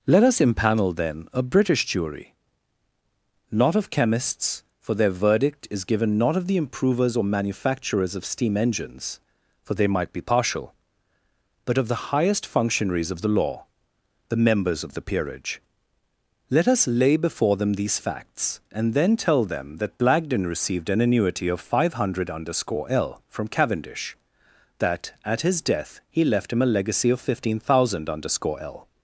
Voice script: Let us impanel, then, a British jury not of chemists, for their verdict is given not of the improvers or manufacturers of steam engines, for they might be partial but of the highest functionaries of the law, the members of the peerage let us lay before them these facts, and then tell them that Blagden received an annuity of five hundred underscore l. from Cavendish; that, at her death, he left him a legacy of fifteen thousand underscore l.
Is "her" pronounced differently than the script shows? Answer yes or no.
yes